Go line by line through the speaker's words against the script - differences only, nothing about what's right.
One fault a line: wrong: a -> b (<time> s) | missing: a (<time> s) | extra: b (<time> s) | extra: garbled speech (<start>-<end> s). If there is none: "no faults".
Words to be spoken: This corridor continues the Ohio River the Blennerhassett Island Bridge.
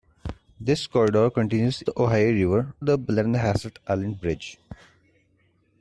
no faults